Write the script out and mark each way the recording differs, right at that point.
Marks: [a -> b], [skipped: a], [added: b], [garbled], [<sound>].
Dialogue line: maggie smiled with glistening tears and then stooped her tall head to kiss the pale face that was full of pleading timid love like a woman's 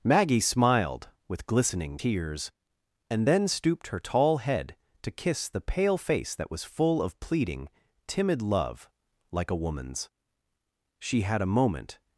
maggie smiled with glistening tears and then stooped her tall head to kiss the pale face that was full of pleading timid love like a woman's [added: she had a moment]